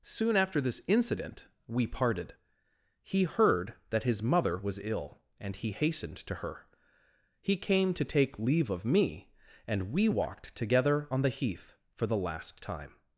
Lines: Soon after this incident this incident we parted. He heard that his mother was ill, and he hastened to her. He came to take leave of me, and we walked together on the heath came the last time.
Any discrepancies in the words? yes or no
yes